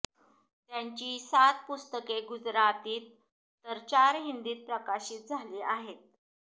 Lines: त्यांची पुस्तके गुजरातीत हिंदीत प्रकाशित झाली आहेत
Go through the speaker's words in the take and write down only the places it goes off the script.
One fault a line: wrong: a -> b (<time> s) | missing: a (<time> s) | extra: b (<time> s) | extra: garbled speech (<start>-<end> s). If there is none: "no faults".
extra: सात (1.2 s)
extra: तर चार (3.6 s)